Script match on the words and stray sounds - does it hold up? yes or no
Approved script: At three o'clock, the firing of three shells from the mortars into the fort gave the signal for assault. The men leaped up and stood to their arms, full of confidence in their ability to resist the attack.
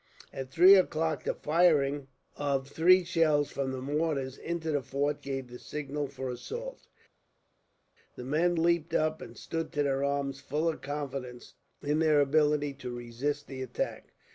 yes